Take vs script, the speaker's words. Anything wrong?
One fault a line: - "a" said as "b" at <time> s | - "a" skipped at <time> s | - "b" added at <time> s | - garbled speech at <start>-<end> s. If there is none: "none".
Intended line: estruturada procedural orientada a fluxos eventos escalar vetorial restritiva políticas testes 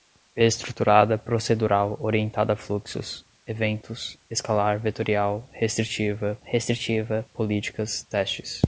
- "restritiva" added at 6.4 s